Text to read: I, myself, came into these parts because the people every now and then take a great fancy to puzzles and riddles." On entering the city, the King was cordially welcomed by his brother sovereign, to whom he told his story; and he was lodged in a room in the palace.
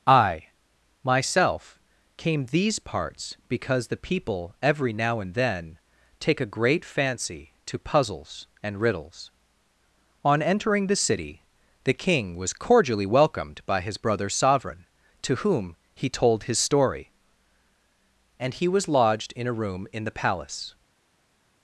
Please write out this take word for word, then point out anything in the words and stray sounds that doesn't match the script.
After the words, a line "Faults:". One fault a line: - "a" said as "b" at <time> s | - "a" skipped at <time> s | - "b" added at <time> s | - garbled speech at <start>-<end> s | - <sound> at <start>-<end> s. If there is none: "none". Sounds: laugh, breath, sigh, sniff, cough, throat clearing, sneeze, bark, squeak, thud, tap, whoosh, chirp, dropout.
I, myself, came these parts because the people every now and then take a great fancy to puzzles and riddles." On entering the city, the King was cordially welcomed by his brother sovereign, to whom he told his story; and he was lodged in a room in the palace.
Faults:
- "into" skipped at 2.5 s